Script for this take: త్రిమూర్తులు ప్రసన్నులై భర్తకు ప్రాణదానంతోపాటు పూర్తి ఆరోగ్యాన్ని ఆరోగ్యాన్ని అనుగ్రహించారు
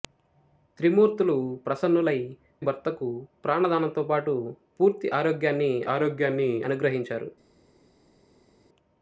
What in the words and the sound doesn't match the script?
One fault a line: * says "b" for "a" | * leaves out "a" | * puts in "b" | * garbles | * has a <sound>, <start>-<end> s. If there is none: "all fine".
all fine